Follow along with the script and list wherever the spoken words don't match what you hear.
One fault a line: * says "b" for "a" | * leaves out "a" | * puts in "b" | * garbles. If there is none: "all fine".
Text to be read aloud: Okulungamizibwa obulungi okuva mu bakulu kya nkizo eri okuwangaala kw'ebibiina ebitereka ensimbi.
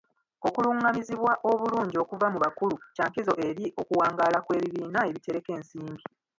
all fine